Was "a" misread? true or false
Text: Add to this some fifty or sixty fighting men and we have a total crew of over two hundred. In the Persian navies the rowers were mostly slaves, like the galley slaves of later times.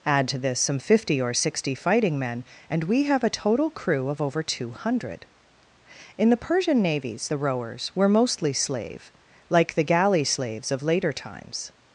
false